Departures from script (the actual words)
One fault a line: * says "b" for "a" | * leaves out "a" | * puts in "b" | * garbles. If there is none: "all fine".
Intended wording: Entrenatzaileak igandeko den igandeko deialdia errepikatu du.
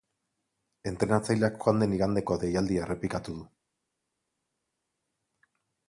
* says "joan" for "igandeko"